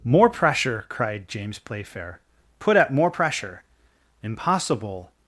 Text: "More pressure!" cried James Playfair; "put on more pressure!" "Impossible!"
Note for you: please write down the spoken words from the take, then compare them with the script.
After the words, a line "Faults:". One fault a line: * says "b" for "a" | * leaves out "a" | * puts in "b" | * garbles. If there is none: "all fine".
"More pressure!" cried James Playfair; "put at more pressure!" "Impossible!"
Faults:
* says "at" for "on"